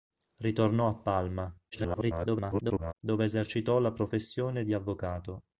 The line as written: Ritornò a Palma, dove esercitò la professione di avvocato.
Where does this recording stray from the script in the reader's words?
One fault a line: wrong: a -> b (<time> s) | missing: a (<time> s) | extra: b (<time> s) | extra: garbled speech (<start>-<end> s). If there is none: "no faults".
extra: garbled speech (1.7-2.9 s)